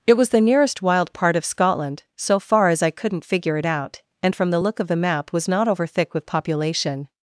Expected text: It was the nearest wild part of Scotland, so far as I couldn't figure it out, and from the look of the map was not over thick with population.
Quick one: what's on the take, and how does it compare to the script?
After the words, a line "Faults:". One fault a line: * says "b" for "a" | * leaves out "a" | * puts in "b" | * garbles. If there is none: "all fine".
It was the nearest wild part of Scotland, so far as I couldn't figure it out, and from the look of the map was not over thick with population.
Faults:
all fine